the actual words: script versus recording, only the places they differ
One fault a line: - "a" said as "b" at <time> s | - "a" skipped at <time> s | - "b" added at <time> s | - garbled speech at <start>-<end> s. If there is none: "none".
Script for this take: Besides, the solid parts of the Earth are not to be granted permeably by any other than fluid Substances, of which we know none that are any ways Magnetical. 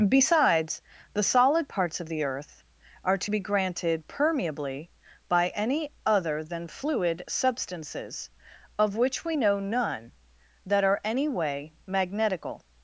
- "not" skipped at 3.2 s
- "ways" said as "way" at 11.3 s